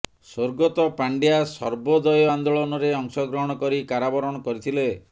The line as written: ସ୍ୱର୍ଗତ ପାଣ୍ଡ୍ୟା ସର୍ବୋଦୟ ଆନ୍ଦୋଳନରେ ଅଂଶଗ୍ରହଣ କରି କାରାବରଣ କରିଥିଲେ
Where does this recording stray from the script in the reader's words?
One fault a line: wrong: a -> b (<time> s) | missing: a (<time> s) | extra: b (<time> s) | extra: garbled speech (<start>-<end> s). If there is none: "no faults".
no faults